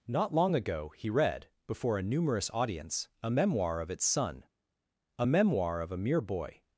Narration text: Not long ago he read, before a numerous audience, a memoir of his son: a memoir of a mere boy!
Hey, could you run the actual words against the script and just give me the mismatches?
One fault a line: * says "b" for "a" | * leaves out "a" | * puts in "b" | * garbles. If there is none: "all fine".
* says "its" for "his"